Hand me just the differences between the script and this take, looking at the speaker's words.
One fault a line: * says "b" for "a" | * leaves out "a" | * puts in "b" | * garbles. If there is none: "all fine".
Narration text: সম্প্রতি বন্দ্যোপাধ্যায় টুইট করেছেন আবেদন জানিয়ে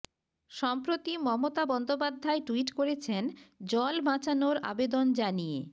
* puts in "মমতা"
* puts in "জল বাঁচানোর"